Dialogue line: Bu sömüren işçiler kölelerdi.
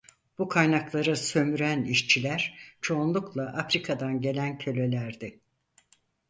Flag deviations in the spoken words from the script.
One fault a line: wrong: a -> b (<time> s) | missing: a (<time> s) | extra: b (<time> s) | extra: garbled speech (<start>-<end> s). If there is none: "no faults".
extra: kaynakları (0.5 s)
extra: çoğunlukla Afrika'dan gelen (2.8 s)